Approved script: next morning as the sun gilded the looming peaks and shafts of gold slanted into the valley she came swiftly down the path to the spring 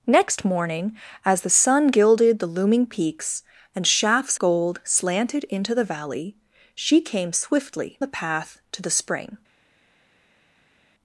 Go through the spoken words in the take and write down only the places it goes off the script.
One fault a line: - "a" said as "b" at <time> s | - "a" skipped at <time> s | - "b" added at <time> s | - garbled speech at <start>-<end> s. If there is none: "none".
- "of" skipped at 4.4 s
- "down" skipped at 8.0 s